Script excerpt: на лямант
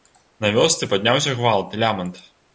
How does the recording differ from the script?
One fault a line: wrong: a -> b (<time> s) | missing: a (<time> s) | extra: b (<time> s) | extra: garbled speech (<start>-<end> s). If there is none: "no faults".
extra: вёсцы падняўся гвалт (0.6 s)